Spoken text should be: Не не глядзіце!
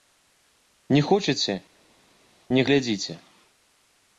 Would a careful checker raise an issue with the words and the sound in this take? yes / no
yes